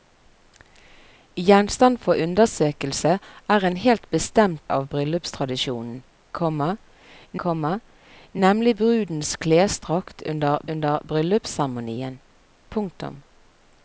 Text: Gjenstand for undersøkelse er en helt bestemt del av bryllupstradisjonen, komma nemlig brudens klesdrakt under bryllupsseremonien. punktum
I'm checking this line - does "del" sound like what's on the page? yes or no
no